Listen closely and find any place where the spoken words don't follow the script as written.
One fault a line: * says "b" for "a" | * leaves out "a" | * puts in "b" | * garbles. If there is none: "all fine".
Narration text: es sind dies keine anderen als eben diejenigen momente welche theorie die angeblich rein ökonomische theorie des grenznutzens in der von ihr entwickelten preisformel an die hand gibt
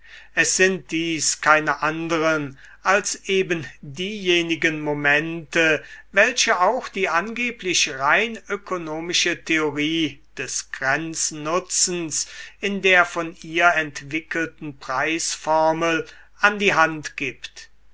* says "auch" for "theorie"